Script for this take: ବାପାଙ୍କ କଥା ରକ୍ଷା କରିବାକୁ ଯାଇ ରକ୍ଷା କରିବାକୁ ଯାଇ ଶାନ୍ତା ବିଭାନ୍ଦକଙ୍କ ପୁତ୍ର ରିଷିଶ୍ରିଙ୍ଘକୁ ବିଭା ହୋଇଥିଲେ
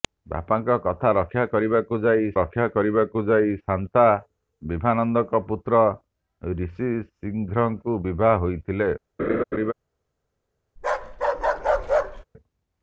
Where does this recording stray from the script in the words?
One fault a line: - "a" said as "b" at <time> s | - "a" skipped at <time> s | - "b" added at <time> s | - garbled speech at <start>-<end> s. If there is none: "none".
none